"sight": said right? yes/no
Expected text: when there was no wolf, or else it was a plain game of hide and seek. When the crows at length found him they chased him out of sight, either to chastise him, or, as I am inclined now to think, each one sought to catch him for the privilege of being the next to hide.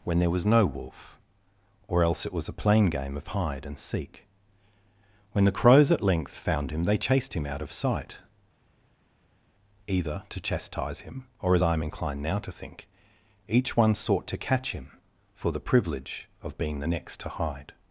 yes